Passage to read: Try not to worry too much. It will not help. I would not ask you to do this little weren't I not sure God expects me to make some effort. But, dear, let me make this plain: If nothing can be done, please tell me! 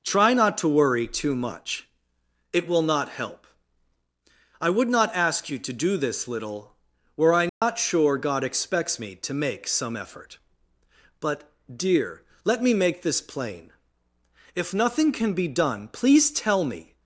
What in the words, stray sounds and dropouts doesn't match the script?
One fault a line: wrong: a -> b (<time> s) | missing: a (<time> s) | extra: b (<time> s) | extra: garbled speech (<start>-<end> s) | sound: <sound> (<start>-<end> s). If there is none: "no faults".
wrong: weren't -> were (7.2 s)
sound: dropout (7.5-7.6 s)